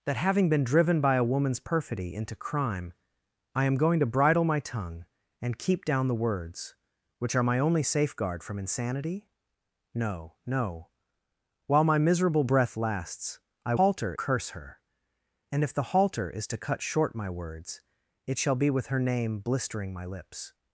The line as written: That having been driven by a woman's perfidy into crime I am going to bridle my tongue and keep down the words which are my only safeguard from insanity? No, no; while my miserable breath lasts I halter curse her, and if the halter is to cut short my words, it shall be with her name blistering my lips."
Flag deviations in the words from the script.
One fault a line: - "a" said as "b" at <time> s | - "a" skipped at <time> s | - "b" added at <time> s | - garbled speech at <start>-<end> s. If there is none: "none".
none